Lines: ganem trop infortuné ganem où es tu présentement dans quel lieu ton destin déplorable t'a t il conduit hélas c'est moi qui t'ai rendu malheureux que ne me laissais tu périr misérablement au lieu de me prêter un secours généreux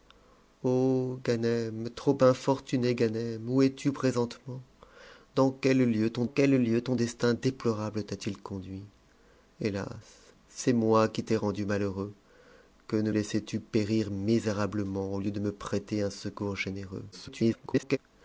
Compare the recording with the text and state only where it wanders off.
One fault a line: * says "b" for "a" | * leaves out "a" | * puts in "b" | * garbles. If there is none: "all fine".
* puts in "quel lieu ton"
* leaves out "me"
* garbles